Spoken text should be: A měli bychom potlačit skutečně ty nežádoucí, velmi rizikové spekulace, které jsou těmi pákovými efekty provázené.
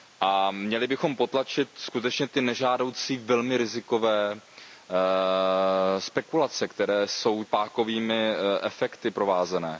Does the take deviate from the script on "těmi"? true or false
true